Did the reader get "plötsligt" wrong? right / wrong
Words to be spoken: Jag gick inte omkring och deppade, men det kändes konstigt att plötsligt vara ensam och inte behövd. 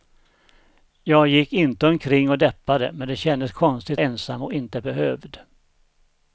wrong